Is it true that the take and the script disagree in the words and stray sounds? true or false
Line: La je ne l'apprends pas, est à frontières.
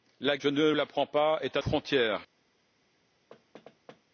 true